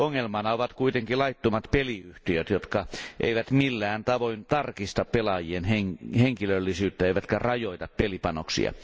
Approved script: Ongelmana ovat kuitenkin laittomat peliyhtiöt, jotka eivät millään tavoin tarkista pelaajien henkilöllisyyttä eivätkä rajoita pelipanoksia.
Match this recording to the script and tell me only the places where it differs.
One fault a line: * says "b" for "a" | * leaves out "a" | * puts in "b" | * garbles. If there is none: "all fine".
all fine